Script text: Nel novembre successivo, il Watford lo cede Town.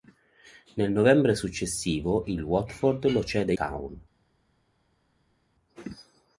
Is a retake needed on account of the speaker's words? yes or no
no